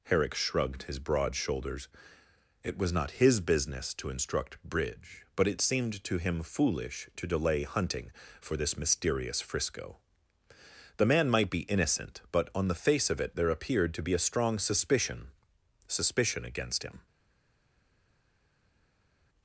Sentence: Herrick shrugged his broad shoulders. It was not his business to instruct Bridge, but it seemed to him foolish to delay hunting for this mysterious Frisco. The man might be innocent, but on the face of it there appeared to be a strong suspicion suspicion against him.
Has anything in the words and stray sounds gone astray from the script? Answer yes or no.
no